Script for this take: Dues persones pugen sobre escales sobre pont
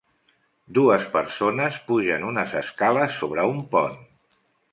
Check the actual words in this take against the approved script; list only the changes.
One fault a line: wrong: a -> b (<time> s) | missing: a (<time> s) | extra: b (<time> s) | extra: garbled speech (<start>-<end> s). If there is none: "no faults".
wrong: sobre -> unes (2.3 s)
extra: un (3.5 s)